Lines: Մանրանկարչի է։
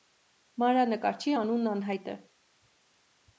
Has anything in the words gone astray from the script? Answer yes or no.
yes